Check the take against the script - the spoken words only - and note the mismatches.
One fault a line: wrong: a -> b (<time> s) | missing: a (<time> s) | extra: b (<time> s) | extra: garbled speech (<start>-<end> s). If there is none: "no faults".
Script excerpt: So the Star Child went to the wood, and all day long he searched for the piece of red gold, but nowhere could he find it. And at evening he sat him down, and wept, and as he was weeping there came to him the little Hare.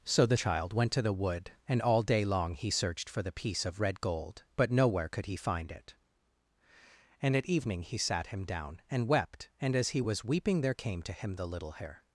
missing: Star (0.4 s)